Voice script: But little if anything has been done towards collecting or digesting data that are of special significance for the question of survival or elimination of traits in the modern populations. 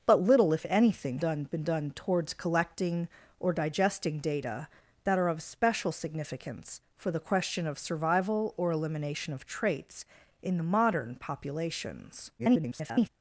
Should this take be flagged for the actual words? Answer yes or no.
yes